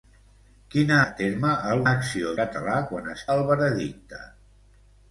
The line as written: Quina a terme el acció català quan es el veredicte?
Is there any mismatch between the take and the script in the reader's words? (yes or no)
no